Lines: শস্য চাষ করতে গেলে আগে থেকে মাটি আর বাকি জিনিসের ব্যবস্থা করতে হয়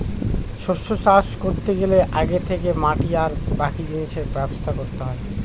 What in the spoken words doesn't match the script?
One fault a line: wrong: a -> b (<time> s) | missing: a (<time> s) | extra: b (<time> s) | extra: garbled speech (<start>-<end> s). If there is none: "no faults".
no faults